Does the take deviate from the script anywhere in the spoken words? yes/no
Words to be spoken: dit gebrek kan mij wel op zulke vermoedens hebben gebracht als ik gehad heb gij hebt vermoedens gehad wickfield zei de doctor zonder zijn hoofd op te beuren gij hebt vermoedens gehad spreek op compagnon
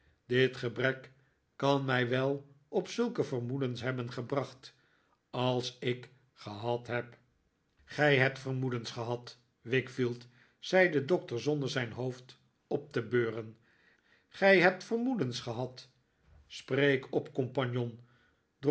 no